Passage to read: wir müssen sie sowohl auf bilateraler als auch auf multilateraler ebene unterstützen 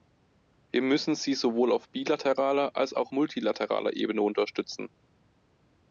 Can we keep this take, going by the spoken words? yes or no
no